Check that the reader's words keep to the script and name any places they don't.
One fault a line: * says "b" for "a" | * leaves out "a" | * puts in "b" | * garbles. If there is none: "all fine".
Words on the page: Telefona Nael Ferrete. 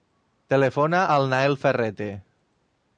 * puts in "al"